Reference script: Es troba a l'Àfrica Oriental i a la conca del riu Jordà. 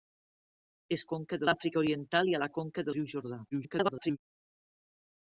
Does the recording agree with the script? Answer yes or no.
no